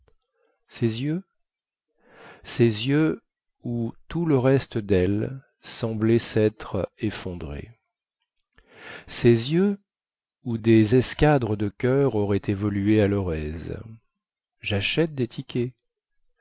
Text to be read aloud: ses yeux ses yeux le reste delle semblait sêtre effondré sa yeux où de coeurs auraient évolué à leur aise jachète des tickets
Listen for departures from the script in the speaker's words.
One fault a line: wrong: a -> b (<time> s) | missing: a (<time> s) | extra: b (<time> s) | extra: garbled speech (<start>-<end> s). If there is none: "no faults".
extra: où tout (3.6 s)
wrong: sa -> ses (9.1 s)
extra: des escadres (10.6 s)